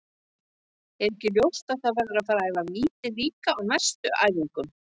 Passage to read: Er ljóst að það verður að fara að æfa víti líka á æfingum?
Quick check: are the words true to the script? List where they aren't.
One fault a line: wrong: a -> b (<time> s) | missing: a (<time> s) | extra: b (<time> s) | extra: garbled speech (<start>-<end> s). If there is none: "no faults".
extra: ekki (1.1 s)
extra: næstu (3.7 s)